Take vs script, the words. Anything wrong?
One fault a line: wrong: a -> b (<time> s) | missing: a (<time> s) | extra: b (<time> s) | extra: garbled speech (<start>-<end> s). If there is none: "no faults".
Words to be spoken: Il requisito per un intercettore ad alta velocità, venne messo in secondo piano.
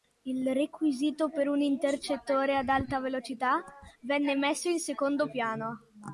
no faults